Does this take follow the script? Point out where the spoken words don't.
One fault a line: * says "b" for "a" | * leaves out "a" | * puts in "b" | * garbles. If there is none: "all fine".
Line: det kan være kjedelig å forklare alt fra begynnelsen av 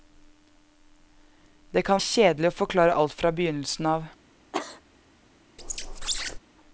* leaves out "være"